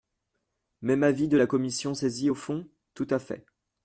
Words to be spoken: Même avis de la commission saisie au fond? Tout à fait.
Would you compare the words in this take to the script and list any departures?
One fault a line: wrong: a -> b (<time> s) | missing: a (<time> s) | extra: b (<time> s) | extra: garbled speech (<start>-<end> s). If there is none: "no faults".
no faults